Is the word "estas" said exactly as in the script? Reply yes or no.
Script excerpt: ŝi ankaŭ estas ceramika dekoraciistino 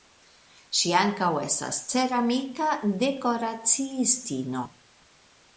yes